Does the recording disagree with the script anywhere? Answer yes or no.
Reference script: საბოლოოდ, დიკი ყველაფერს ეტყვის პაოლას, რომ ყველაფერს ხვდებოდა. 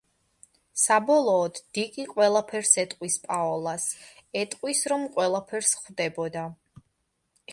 yes